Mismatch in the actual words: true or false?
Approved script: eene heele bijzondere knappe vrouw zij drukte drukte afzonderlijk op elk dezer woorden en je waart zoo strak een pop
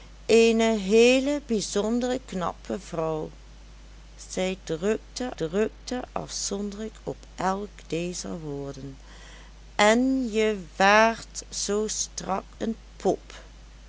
false